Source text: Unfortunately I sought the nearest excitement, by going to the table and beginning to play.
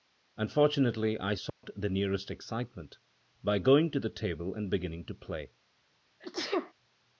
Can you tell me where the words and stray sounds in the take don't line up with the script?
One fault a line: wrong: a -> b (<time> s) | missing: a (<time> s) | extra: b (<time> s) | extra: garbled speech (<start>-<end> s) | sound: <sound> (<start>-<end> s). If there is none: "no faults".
sound: dropout (1.5-1.6 s)
sound: sneeze (6.2-6.7 s)